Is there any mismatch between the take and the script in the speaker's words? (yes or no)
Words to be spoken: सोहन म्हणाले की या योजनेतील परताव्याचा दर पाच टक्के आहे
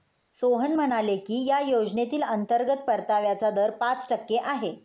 yes